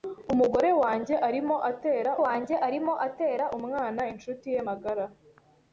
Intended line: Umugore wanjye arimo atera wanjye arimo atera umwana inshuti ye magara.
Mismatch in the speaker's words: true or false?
false